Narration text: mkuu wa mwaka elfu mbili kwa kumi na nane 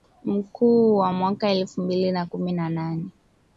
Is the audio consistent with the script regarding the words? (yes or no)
no